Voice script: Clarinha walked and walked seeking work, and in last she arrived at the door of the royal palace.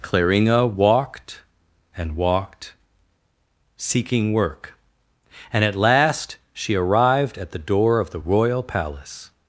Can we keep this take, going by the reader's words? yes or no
no